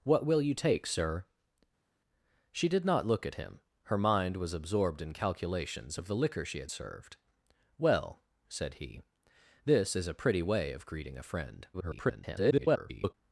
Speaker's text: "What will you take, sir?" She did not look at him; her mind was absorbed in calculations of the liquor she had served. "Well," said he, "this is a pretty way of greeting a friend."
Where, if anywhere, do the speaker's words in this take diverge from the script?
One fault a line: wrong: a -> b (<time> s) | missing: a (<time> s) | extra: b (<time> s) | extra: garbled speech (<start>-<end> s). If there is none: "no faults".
extra: garbled speech (11.7-13.1 s)